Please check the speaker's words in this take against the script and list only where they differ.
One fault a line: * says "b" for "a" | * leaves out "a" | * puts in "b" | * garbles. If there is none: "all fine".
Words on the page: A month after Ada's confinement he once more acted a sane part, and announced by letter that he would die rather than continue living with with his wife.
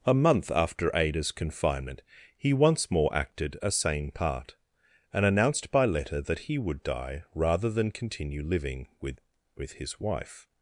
all fine